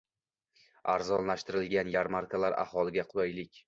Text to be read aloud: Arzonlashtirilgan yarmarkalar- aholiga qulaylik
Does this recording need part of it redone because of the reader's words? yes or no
no